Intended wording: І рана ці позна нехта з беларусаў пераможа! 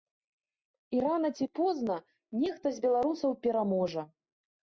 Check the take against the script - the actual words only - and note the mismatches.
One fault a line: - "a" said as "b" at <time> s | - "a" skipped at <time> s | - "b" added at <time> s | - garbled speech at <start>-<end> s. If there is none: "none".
none